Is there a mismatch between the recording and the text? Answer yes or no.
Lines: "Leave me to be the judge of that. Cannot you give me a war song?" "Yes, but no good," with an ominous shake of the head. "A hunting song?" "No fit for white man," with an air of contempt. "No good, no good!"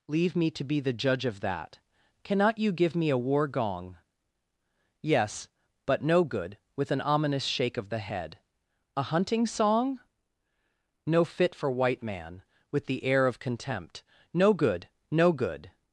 yes